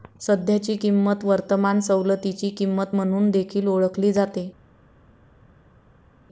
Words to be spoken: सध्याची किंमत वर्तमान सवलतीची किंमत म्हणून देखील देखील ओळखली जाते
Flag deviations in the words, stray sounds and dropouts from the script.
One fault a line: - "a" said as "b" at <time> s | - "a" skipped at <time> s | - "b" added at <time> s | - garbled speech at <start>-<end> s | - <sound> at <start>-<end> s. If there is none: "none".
- "देखील" skipped at 3.7 s